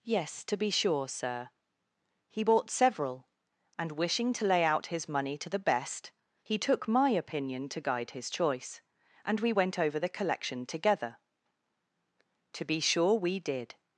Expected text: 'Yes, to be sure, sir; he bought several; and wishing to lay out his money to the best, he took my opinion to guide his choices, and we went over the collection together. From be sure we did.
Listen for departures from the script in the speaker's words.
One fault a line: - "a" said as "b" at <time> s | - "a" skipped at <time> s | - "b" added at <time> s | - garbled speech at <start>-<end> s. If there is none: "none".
- "choices" said as "choice" at 8.3 s
- "From" said as "To" at 12.5 s